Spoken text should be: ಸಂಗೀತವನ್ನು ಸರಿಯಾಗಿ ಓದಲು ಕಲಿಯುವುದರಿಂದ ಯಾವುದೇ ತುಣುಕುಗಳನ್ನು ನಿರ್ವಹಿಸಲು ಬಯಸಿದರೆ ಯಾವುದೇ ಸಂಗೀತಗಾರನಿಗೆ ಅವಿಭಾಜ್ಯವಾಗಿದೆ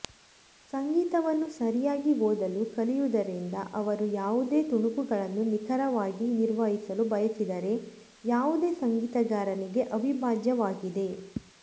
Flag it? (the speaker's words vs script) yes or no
yes